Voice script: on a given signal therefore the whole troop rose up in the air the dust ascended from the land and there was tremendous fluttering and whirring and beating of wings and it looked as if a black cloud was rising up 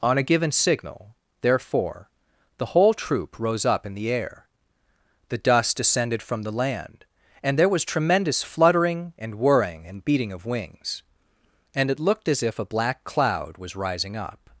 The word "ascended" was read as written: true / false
false